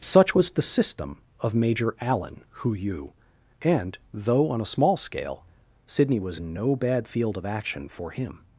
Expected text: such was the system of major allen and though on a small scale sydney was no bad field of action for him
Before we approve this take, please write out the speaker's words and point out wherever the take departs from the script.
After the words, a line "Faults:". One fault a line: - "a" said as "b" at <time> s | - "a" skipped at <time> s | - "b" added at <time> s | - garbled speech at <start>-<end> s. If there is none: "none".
such was the system of major allen hu yu and though on a small scale sydney was no bad field of action for him
Faults:
- "hu yu" added at 2.5 s